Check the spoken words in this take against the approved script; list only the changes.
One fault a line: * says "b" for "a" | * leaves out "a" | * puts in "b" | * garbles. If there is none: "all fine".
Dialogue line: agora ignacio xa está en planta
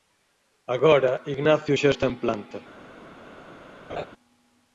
all fine